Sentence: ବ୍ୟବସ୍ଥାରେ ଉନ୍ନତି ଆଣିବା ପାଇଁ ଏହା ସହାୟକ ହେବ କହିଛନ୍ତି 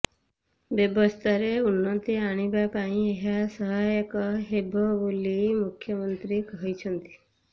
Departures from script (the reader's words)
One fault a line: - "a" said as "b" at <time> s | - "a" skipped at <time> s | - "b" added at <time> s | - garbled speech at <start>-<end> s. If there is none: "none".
- "ବୋଲି ମୁଖ୍ୟମନ୍ତ୍ରୀ" added at 5.0 s